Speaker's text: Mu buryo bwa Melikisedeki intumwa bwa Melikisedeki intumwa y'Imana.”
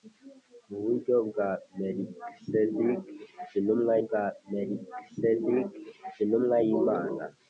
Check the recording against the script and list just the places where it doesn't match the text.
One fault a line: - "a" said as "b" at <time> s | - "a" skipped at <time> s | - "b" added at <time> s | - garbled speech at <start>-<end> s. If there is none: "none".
none